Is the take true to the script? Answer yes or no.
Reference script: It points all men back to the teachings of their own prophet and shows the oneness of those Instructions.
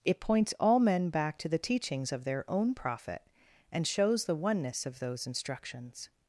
yes